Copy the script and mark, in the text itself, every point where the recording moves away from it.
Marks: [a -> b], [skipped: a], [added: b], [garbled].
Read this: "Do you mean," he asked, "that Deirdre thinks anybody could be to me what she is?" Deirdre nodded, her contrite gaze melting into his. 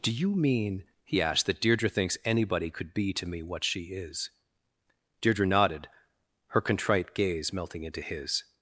"Do you mean," he asked, "that Deirdre thinks anybody could be to me what she is?" Deirdre nodded, her contrite gaze melting into his.